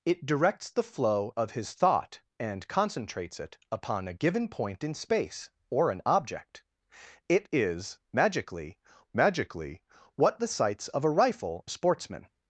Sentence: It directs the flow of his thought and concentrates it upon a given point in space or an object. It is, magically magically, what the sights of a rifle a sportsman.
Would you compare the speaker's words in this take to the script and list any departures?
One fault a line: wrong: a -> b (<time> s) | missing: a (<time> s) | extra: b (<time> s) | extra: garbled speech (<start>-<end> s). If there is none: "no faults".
no faults